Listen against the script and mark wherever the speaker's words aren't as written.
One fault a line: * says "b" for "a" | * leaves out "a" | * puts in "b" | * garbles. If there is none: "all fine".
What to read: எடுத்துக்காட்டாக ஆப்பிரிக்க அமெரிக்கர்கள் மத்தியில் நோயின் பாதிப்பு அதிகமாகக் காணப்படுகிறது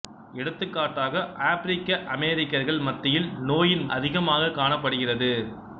* leaves out "பாதிப்பு"